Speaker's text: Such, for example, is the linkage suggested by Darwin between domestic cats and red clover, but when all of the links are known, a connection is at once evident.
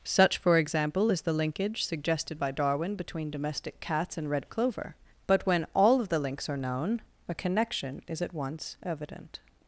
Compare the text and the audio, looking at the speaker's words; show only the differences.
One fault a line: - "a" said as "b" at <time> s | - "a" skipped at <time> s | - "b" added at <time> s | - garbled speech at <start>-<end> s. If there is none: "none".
none